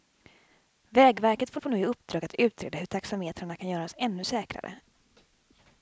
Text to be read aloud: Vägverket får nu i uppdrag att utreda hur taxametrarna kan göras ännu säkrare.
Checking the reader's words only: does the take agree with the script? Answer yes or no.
no